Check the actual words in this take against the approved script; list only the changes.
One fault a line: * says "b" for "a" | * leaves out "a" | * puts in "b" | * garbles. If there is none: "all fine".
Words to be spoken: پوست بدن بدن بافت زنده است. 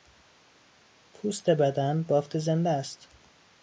* leaves out "بدن"